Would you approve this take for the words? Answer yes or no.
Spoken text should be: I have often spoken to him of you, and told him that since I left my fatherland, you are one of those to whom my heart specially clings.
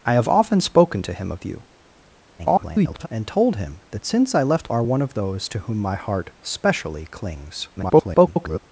no